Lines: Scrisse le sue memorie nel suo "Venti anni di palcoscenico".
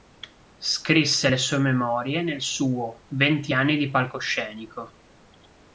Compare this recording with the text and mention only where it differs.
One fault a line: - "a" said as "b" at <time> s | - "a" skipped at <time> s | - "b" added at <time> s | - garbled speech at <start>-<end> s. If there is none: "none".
none